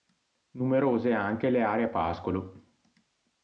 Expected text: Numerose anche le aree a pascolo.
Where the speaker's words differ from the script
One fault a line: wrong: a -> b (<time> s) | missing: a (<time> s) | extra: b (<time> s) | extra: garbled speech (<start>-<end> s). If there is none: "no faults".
no faults